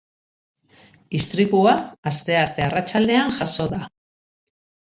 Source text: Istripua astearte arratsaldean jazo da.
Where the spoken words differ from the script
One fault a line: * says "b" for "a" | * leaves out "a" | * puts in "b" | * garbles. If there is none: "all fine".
all fine